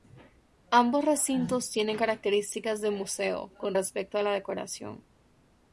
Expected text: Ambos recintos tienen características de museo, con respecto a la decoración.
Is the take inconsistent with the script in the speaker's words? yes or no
no